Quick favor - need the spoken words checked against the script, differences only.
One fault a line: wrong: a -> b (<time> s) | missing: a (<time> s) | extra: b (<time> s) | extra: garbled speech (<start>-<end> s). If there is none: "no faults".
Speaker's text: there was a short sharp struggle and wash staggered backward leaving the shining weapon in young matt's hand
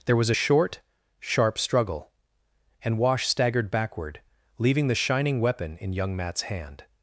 no faults